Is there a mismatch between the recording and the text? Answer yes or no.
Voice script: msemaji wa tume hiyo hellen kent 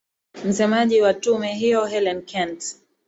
no